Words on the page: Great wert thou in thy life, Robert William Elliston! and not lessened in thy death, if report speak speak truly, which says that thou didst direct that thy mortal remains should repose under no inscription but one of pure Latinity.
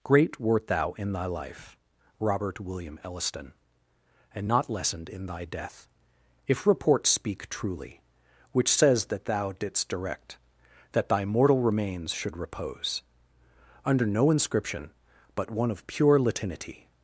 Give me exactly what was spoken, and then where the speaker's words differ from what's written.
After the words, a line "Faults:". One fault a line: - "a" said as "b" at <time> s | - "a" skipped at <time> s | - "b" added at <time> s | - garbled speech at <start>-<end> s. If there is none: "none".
Great wert thou in thy life, Robert William Elliston! and not lessened in thy death, if report speak truly, which says that thou didst direct that thy mortal remains should repose under no inscription but one of pure Latinity.
Faults:
- "speak" skipped at 7.5 s